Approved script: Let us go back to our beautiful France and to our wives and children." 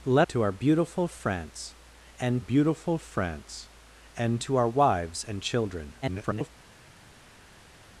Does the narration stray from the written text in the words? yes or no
yes